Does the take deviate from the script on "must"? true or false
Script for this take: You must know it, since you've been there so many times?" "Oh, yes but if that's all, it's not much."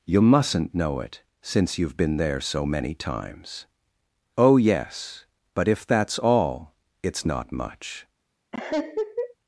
true